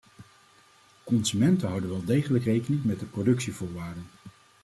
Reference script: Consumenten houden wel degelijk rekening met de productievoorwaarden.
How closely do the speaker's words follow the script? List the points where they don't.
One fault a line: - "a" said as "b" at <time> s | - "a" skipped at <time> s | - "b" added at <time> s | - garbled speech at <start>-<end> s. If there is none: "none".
none